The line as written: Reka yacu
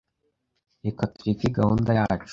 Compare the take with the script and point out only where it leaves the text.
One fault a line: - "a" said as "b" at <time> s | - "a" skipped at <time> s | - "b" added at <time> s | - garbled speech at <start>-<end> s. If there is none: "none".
- "tureke gahunda" added at 1.1 s